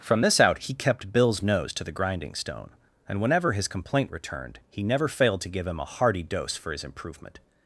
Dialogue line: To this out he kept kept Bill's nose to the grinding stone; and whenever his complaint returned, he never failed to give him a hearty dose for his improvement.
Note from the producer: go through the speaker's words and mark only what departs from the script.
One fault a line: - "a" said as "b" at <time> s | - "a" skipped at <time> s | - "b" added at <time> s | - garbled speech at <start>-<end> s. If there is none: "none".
- "To" said as "From" at 0.0 s
- "kept" skipped at 1.1 s